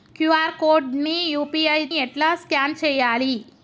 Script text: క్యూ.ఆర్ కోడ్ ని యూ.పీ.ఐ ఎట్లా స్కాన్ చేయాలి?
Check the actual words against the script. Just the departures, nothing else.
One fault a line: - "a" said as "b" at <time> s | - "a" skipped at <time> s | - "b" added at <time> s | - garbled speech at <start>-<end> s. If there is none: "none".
none